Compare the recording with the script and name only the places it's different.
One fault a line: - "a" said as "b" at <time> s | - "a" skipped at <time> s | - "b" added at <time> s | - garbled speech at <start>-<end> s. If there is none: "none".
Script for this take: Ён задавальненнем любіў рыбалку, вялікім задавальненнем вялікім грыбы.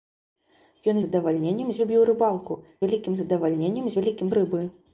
none